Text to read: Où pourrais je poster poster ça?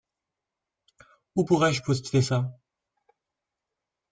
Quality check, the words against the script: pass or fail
fail